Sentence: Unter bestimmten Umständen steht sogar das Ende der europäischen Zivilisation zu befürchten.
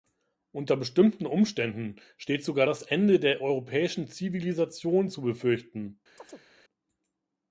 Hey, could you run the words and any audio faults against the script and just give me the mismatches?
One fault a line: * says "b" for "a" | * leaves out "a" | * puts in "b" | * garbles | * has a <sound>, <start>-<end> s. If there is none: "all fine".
* has a chirp, 6.2-6.5 s